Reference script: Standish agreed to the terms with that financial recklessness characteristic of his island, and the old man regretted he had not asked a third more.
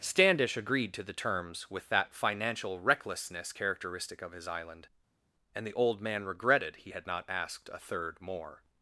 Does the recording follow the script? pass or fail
pass